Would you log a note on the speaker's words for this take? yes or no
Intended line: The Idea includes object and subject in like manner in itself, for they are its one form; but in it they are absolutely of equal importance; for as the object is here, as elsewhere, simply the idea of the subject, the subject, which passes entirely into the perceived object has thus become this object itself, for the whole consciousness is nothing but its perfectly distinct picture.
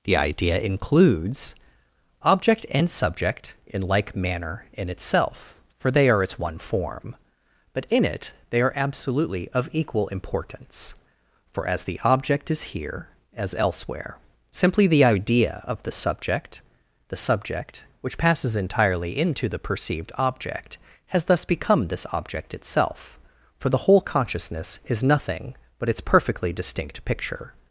no